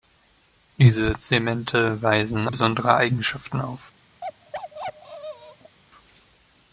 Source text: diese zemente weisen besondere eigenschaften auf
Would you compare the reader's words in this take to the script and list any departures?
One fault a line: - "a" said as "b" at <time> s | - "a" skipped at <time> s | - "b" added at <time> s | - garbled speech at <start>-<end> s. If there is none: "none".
none